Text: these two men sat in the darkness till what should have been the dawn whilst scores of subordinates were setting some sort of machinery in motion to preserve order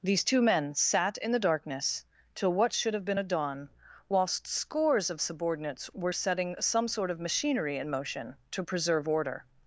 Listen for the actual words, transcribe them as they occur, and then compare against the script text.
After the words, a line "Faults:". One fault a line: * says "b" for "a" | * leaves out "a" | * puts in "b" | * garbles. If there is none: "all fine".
these two men sat in the darkness till what should have been a dawn whilst scores of subordinates were setting some sort of machinery in motion to preserve order
Faults:
* says "a" for "the"